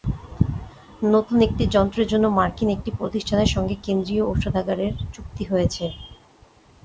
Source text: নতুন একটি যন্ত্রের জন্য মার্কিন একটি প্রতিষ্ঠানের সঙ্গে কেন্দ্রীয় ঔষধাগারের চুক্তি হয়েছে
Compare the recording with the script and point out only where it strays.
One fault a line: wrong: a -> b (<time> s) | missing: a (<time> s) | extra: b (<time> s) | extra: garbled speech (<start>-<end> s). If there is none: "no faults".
no faults